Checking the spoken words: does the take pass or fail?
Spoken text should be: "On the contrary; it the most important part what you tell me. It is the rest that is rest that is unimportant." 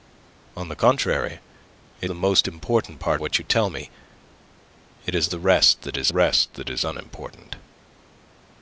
pass